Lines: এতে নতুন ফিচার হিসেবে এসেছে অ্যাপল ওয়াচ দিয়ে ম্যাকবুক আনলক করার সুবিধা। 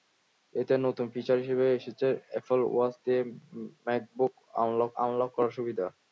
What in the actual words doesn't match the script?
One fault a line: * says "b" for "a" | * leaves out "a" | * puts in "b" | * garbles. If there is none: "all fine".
* puts in "আনলক"